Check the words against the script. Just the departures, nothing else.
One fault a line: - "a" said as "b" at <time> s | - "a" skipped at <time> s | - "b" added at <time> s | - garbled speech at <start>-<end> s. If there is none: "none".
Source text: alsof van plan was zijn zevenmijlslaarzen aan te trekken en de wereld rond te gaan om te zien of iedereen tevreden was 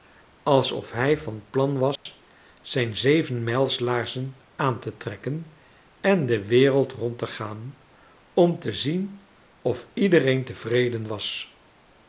- "hij" added at 0.9 s